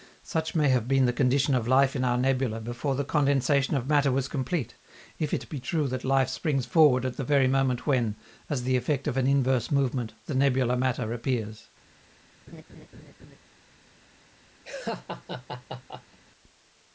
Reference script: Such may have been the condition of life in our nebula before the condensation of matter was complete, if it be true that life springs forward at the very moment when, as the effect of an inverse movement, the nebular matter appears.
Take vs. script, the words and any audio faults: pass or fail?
fail